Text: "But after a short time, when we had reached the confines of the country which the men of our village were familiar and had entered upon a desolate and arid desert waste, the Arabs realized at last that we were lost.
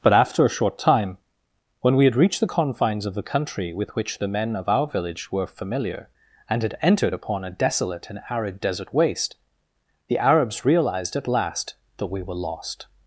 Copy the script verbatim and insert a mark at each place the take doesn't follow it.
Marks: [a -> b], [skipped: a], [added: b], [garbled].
"But after a short time, when we had reached the confines of the country [added: with] which the men of our village were familiar and had entered upon a desolate and arid desert waste, the Arabs realized at last that we were lost.